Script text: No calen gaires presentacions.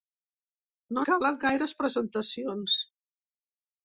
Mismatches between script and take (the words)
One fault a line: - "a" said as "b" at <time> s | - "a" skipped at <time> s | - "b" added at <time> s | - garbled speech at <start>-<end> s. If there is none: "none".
none